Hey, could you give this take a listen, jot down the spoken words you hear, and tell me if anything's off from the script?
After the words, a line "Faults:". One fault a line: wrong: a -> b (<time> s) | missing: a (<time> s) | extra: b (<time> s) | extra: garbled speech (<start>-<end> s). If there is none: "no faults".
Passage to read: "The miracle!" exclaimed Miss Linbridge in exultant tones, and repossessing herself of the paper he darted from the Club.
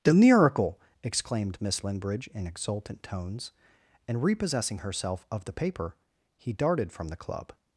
"The miracle!" exclaimed Miss Linbridge in exultant tones, and repossessing herself of the paper he darted from the Club.
Faults:
no faults